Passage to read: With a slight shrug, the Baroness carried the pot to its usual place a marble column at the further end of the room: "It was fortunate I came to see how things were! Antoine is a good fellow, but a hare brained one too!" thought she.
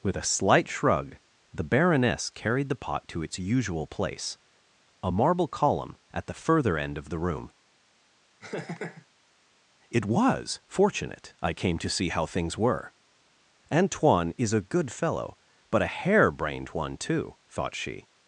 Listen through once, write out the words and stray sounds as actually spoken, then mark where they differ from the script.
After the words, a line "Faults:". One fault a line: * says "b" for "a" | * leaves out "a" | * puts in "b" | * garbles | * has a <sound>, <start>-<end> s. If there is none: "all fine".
With a slight shrug, the Baroness carried the pot to its usual place a marble column at the further end of the room: "It was fortunate I came to see how things were! Antoine is a good fellow, but a hare brained one too!" thought she.
Faults:
* has a laugh, 8.4-9.1 s